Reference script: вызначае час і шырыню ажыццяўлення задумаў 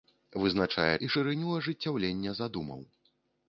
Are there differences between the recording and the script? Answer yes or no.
yes